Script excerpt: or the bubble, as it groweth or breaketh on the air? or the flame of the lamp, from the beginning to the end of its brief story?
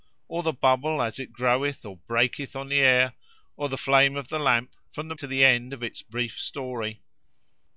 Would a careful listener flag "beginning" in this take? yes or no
yes